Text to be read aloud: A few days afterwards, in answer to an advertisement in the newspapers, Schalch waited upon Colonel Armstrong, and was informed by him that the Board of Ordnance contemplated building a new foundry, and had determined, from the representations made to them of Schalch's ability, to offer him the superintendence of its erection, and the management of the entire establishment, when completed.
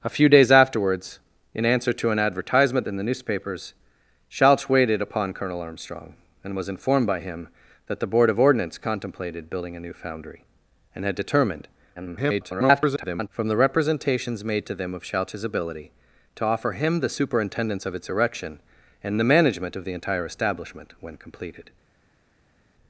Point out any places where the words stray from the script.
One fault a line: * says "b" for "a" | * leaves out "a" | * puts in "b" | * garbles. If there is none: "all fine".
* garbles